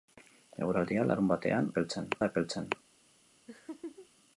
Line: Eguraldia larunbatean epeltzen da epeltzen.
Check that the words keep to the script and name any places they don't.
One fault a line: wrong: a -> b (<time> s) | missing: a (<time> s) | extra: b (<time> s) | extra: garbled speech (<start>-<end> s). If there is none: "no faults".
no faults